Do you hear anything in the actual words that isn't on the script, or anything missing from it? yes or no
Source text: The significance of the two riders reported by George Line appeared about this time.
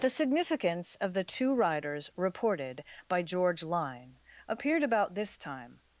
no